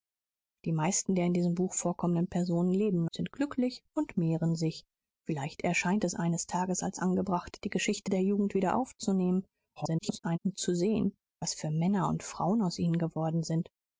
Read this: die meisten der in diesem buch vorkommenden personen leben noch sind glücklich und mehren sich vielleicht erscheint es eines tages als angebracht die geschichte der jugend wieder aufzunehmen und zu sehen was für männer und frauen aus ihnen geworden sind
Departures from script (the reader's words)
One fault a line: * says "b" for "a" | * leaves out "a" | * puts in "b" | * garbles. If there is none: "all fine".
* leaves out "noch"
* garbles